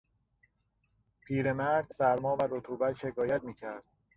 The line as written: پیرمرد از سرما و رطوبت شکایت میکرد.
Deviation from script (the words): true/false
true